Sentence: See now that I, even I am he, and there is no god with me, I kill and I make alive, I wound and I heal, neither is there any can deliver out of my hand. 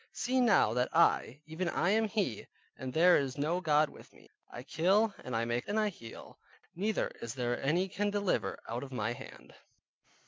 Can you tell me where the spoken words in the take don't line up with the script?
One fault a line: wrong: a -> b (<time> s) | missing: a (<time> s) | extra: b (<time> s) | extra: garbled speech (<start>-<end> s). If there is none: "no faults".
missing: alive I wound (5.7 s)